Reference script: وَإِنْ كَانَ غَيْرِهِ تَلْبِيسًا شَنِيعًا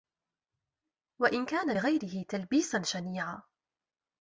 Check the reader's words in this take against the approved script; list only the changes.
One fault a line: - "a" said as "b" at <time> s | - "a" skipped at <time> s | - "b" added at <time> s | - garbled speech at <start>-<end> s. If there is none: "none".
none